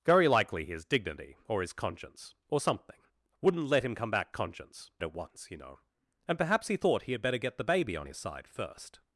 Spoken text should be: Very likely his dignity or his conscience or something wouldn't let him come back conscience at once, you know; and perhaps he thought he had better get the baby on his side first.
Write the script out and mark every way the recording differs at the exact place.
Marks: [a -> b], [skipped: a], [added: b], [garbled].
Very likely his dignity or his conscience or something wouldn't let him come back conscience at once, you know; and perhaps he thought he had better get the baby on his side first.